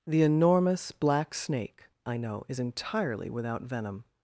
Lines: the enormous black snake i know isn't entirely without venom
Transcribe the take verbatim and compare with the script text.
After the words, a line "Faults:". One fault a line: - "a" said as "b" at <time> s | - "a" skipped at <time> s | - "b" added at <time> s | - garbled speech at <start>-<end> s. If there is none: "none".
the enormous black snake i know is entirely without venom
Faults:
- "isn't" said as "is" at 2.5 s